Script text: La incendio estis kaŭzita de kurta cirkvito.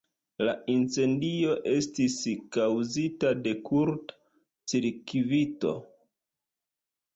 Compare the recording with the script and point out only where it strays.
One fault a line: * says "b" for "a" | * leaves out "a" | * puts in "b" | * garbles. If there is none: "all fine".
all fine